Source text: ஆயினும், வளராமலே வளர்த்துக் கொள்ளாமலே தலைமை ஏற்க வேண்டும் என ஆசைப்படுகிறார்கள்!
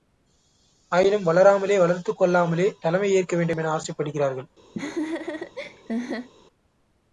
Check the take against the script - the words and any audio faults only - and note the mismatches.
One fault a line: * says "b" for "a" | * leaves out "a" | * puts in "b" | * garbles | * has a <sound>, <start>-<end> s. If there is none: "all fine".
* has a laugh, 4.7-6.3 s